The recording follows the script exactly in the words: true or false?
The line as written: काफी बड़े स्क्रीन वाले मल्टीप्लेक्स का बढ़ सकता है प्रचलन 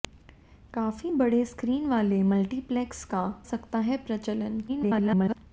false